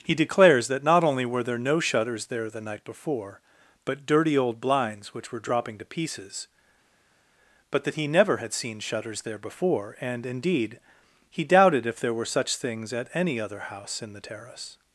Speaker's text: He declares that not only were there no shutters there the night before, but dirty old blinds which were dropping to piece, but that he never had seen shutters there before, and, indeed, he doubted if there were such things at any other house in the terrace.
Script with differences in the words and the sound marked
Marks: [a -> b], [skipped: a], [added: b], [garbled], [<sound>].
He declares that not only were there no shutters there the night before, but dirty old blinds which were dropping to [piece, -> pieces] but that he never had seen shutters there before, and, indeed, he doubted if there were such things at any other house in the terrace.